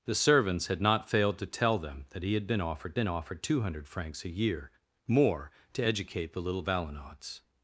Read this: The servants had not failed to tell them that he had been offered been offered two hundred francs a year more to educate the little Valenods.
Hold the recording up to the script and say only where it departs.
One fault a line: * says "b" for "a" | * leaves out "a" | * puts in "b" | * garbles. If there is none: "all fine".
all fine